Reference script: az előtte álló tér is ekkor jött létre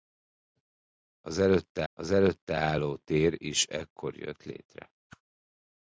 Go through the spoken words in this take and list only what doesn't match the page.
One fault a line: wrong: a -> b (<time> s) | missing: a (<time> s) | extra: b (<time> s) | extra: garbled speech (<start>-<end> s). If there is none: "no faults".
extra: az előtte (1.9 s)